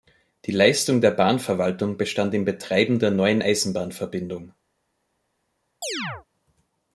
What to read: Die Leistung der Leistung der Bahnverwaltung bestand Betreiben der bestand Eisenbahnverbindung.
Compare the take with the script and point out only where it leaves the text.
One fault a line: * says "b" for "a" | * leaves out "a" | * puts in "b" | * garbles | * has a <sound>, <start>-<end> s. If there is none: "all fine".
* leaves out "Leistung der"
* puts in "im"
* says "neuen" for "bestand"
* has a chirp, 5.8-6.3 s